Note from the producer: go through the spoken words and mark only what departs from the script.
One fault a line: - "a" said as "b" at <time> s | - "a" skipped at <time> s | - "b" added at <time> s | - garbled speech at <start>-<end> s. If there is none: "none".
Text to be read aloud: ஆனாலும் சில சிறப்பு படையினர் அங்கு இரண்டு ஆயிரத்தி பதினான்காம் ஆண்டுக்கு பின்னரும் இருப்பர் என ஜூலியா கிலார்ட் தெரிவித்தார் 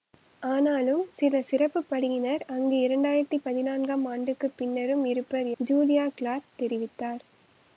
- "என" skipped at 5.5 s